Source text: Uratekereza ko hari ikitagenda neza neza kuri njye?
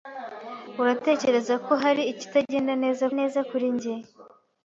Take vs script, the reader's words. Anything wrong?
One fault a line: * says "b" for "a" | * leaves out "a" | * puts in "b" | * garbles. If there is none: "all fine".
all fine